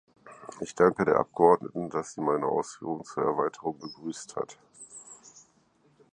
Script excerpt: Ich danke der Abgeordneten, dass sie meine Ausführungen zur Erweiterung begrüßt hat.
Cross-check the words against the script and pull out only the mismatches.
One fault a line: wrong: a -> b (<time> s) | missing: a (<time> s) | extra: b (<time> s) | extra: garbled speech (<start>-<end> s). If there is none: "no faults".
no faults